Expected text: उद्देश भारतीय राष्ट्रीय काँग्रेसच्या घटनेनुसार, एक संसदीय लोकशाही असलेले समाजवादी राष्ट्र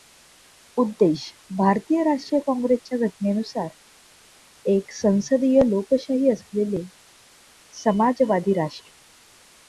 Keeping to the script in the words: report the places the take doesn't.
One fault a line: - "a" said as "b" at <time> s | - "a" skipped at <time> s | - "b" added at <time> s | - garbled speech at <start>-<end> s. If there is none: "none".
none